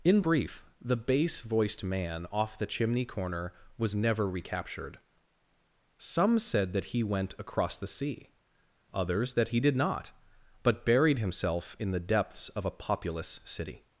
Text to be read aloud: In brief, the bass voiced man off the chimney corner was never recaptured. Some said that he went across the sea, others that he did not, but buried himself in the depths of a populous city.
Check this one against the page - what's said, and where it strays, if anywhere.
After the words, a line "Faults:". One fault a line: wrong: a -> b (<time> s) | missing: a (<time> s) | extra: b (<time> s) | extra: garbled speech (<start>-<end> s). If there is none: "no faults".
In brief, the bass voiced man off the chimney corner was never recaptured. Some said that he went across the sea, others that he did not, but buried himself in the depths of a populous city.
Faults:
no faults